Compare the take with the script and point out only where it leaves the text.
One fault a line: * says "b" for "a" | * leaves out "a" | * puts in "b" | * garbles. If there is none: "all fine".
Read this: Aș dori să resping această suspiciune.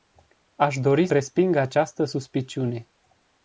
* leaves out "să"